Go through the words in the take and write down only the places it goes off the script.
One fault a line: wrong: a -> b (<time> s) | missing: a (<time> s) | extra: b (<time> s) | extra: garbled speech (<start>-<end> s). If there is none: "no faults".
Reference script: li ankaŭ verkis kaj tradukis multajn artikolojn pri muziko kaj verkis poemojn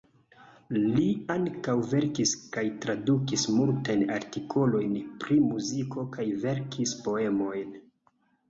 no faults